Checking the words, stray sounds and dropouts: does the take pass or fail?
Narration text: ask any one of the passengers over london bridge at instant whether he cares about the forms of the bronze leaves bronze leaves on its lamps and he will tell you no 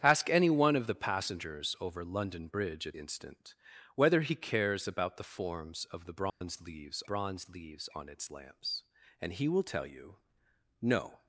fail